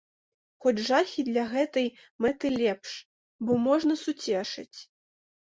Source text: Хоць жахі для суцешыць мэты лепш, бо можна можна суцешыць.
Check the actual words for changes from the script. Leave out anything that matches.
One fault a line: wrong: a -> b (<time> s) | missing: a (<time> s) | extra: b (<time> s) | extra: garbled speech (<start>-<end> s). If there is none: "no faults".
wrong: суцешыць -> гэтай (1.5 s)
missing: можна (3.9 s)